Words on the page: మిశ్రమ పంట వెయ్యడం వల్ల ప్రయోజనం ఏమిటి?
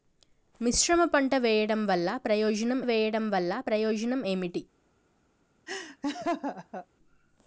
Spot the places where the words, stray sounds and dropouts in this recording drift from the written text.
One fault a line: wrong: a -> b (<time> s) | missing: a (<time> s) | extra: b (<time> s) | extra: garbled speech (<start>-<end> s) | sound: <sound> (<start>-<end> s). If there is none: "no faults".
extra: వెయ్యడం వల్ల ప్రయోజనం (2.8 s)
sound: laugh (5.7-6.9 s)